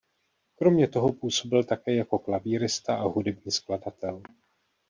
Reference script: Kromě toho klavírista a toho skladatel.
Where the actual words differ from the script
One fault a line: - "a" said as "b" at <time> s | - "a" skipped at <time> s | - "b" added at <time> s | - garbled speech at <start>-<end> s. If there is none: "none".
- "působil také jako" added at 1.1 s
- "toho" said as "hudební" at 3.1 s